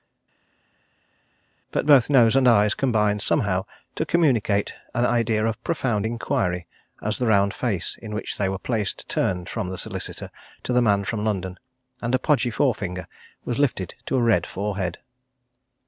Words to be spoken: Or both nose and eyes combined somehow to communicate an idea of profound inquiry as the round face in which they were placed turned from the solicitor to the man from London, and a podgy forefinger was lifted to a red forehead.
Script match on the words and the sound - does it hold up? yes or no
no